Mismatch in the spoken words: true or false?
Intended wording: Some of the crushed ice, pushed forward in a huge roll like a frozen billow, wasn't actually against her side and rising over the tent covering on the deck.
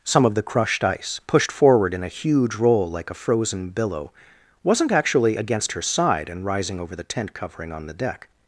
false